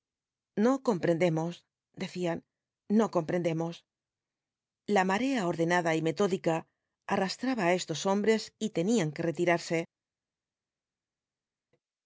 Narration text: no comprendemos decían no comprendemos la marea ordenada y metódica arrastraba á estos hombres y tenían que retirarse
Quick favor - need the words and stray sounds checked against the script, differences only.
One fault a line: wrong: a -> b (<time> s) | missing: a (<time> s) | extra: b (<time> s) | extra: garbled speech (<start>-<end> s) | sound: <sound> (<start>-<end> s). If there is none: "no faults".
no faults